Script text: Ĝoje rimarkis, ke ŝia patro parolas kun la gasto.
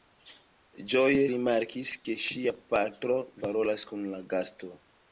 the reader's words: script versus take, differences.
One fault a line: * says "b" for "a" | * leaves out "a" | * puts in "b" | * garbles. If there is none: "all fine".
all fine